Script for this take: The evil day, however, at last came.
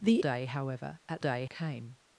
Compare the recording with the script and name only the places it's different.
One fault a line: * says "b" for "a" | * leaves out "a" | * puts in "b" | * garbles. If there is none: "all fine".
* leaves out "evil"
* says "day" for "last"